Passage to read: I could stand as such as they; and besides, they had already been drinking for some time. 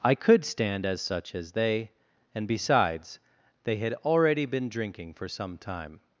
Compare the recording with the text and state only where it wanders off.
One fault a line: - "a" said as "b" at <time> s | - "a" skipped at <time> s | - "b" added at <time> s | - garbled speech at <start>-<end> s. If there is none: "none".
none